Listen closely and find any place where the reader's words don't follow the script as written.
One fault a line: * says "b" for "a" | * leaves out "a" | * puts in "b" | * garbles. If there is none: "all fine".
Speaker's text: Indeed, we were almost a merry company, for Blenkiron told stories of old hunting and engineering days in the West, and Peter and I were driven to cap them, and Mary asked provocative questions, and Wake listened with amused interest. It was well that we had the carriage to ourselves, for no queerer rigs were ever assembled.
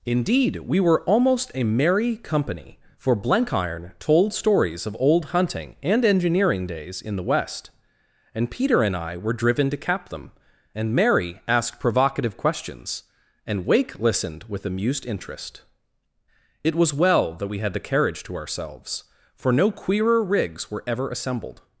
all fine